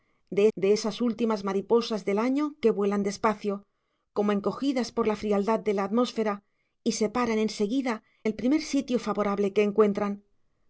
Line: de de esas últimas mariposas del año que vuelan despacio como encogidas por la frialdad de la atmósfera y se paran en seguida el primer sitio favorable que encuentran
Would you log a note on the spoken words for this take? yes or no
no